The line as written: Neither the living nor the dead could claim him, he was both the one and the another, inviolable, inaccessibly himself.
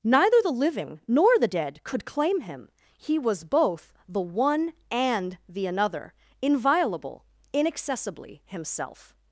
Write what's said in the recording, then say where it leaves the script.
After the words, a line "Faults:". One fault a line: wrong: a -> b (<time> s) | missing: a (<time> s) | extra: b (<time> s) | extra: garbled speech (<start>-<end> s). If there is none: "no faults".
Neither the living nor the dead could claim him, he was both the one and the another, inviolable, inaccessibly himself.
Faults:
no faults